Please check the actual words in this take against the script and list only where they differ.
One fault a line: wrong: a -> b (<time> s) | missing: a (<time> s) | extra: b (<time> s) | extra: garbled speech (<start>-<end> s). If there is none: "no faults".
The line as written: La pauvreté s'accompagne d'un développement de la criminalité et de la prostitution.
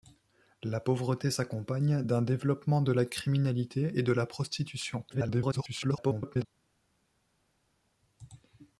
extra: garbled speech (5.1-6.5 s)